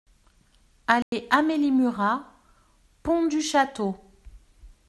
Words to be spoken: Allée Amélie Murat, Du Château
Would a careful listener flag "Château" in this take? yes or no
no